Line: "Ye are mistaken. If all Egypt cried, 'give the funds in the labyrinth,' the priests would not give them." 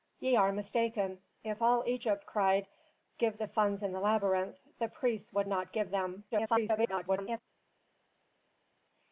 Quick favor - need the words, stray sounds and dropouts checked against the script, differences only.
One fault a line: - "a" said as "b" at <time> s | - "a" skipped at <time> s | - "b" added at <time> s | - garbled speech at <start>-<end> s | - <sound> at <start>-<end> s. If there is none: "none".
- garbled speech at 6.3-7.4 s